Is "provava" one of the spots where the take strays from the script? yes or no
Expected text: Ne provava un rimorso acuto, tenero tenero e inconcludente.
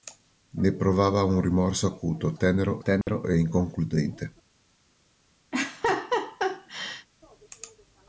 no